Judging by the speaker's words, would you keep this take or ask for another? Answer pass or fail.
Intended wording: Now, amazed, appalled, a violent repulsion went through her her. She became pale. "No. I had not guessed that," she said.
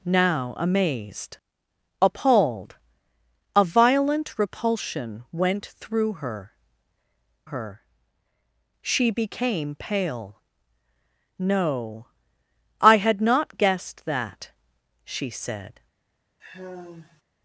pass